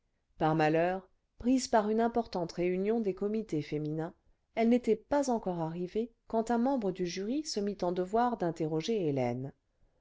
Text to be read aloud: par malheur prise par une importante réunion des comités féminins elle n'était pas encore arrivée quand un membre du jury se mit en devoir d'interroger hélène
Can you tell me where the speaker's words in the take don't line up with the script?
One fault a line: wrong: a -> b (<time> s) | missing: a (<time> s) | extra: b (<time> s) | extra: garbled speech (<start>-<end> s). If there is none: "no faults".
no faults